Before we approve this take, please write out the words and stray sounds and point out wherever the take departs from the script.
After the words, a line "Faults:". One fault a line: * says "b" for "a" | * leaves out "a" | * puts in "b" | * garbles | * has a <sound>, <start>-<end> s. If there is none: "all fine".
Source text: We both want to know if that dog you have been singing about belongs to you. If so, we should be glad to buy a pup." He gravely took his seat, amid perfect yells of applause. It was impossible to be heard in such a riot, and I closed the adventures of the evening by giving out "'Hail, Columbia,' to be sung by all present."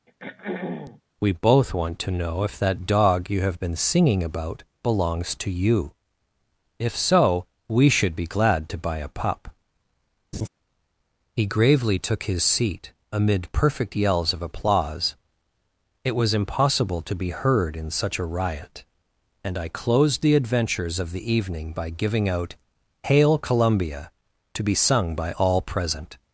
We both want to know if that dog you have been singing about belongs to you. If so, we should be glad to buy a pup." He gravely took his seat, amid perfect yells of applause. It was impossible to be heard in such a riot, and I closed the adventures of the evening by giving out "'Hail, Columbia,' to be sung by all present."
Faults:
* has a throat clearing, 0.1-1.0 s
* has a laugh, 10.3-10.5 s